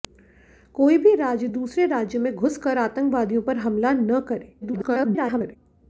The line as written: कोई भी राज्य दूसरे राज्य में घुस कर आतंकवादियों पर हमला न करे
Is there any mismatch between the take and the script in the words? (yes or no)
yes